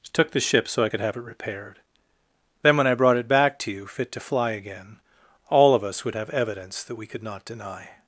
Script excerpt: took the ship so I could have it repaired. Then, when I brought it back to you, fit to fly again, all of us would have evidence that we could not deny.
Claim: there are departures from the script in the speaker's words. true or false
false